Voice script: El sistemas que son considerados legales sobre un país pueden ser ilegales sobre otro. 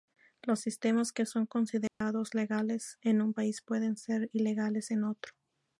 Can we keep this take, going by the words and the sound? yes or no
no